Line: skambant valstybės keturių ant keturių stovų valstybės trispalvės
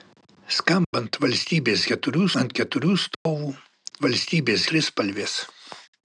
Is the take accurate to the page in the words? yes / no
yes